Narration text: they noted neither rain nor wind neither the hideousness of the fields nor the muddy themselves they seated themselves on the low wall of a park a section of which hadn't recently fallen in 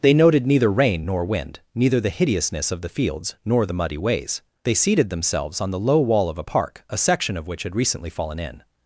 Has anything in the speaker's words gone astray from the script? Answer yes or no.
yes